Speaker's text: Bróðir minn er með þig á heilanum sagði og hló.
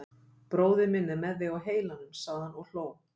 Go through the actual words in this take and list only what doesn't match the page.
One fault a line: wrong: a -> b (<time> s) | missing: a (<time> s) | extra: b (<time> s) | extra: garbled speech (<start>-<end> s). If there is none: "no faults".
extra: hann (2.5 s)